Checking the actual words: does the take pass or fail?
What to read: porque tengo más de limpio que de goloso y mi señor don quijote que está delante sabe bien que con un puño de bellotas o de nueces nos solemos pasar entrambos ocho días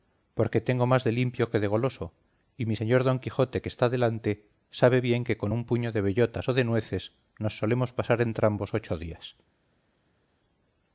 pass